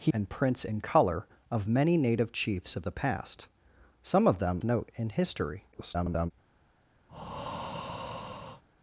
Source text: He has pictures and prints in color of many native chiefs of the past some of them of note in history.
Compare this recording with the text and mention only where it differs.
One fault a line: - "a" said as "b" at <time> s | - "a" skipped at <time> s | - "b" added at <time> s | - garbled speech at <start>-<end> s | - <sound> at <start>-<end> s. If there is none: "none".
- "has pictures" skipped at 0.1 s
- "of" skipped at 4.6 s
- garbled speech at 5.7-6.3 s
- breath at 7.1-8.6 s